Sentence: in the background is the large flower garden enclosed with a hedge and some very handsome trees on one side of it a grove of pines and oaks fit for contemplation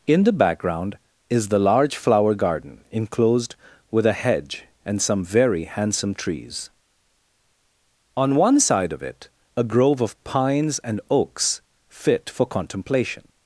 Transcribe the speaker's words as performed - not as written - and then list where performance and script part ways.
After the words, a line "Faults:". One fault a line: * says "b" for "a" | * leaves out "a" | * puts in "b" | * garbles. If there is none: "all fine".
in the background is the large flower garden enclosed with a hedge and some very handsome trees on one side of it a grove of pines and oaks fit for contemplation
Faults:
all fine